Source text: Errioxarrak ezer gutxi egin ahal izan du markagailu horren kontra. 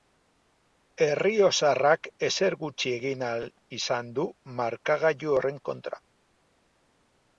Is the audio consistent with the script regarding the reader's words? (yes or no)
yes